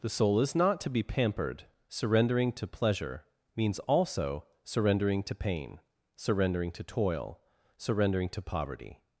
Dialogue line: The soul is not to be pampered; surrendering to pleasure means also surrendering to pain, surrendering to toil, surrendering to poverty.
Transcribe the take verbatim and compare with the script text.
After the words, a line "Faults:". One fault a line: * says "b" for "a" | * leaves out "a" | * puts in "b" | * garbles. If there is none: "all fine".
The soul is not to be pampered; surrendering to pleasure means also surrendering to pain, surrendering to toil, surrendering to poverty.
Faults:
all fine